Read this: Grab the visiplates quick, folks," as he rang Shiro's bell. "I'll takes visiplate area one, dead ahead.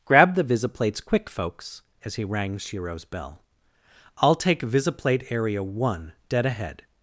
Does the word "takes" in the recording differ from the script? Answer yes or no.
yes